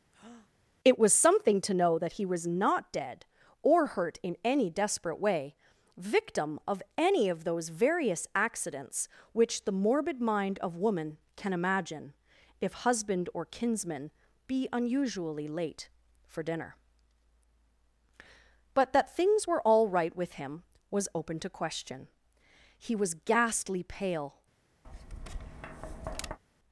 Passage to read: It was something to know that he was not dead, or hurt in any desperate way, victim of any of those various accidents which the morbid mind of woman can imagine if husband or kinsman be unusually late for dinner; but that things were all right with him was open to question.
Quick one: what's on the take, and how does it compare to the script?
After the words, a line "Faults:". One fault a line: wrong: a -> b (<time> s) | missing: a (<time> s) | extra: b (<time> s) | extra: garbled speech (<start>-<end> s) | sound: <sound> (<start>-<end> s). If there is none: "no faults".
It was something to know that he was not dead, or hurt in any desperate way, victim of any of those various accidents which the morbid mind of woman can imagine if husband or kinsman be unusually late for dinner; but that things were all right with him was open to question. He was ghastly pale
Faults:
sound: breath (0.1-0.5 s)
extra: He was ghastly pale (22.8 s)
sound: tap (24.8-26.4 s)